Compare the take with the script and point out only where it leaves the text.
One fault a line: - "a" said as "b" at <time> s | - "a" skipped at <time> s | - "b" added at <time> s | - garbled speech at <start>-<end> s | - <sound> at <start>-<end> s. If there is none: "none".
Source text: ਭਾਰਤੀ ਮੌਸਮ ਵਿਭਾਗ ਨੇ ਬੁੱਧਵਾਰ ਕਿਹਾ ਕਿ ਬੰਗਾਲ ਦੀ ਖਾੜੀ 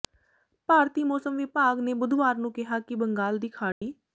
- "ਨੂੰ" added at 2.4 s
- dropout at 3.7-3.8 s